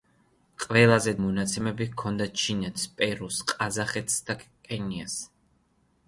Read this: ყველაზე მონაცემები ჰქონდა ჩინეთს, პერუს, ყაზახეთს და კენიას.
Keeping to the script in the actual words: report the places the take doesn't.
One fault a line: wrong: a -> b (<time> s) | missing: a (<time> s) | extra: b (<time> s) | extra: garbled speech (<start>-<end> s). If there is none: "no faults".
no faults